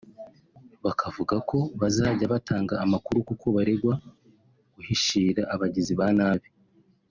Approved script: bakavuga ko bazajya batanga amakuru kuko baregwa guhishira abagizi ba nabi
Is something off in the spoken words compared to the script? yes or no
no